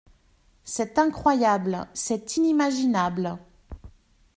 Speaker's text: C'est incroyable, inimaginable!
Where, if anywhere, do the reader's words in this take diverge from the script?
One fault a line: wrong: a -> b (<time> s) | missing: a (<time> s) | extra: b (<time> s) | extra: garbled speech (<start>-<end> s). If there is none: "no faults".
extra: c'est (1.9 s)